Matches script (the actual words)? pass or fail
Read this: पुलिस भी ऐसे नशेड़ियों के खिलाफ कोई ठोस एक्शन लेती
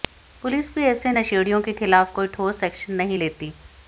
fail